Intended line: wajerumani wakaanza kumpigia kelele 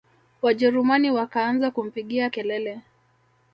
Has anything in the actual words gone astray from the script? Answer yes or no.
no